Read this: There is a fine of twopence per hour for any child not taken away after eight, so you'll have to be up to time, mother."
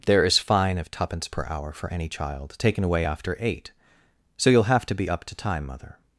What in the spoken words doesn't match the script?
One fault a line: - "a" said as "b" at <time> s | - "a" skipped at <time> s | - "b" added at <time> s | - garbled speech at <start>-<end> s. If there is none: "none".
- "a" skipped at 0.4 s
- "not" skipped at 2.5 s